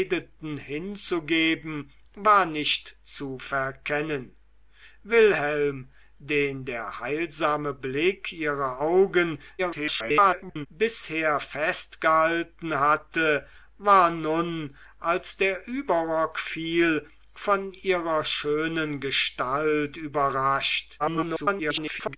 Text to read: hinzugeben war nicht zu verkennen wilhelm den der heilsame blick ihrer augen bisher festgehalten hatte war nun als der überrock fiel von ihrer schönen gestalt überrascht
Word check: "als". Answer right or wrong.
right